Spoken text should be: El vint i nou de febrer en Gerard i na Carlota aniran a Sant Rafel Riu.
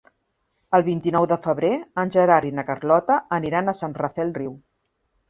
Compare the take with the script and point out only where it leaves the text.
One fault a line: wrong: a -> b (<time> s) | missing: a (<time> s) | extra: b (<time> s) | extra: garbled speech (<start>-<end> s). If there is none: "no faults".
no faults